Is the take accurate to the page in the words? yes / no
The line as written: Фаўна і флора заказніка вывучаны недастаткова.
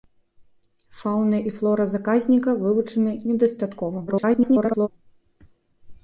no